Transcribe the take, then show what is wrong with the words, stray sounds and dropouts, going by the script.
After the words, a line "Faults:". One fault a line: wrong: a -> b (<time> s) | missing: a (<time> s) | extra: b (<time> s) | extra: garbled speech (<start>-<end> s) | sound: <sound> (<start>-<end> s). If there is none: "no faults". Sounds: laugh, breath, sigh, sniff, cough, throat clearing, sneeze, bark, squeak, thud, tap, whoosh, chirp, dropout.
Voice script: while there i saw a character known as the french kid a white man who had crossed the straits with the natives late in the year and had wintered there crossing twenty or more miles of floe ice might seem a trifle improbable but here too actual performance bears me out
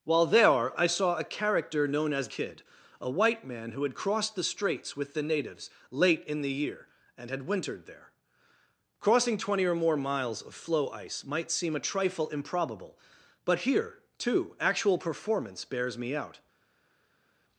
while there i saw a character known as kid a white man who had crossed the straits with the natives late in the year and had wintered there crossing twenty or more miles of floe ice might seem a trifle improbable but here too actual performance bears me out
Faults:
missing: the french (2.3 s)